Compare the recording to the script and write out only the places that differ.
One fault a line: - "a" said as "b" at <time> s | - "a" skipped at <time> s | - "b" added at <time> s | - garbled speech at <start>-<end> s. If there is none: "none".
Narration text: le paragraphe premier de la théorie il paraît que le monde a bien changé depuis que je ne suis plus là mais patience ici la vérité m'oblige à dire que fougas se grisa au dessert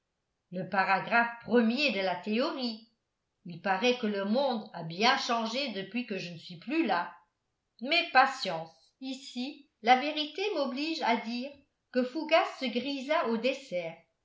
none